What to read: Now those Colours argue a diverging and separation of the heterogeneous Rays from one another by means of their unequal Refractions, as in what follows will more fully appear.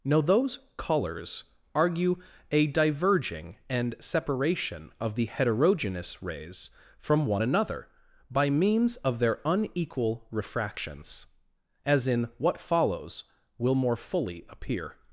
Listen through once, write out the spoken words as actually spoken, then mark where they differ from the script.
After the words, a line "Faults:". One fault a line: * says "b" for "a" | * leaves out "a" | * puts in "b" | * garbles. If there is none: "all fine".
Now those Colours argue a diverging and separation of the heterogeneous Rays from one another by means of their unequal Refractions, as in what follows will more fully appear.
Faults:
all fine